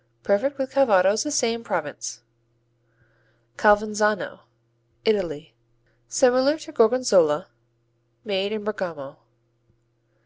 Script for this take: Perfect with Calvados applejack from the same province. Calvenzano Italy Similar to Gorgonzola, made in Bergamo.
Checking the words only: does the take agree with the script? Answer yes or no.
no